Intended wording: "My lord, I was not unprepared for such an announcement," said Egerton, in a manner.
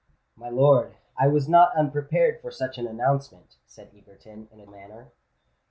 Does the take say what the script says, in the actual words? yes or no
yes